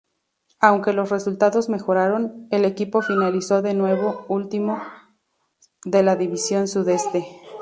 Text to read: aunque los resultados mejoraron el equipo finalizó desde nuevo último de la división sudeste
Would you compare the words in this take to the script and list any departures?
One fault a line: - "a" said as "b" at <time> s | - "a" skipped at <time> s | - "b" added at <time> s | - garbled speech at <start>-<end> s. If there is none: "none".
- "desde" said as "de" at 3.6 s